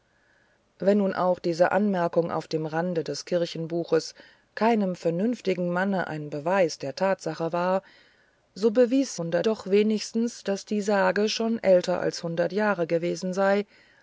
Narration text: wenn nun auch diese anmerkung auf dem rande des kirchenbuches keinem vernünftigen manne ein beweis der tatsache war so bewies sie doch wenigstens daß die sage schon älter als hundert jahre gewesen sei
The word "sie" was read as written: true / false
false